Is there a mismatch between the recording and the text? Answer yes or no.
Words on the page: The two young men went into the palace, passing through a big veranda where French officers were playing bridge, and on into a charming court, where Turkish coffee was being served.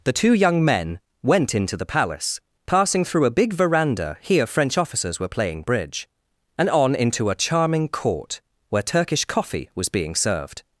yes